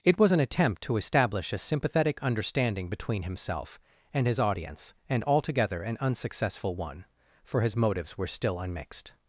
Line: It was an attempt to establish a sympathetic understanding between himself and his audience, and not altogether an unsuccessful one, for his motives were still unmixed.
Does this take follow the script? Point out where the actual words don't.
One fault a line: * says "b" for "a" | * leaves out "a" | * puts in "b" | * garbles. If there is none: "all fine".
* leaves out "not"